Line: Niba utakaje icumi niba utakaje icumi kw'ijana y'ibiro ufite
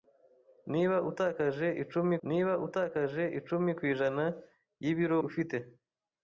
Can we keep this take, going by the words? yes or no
yes